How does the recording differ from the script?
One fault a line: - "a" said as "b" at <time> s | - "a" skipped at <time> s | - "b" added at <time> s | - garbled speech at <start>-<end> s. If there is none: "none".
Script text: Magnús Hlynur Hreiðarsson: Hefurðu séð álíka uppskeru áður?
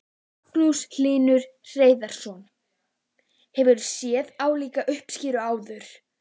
none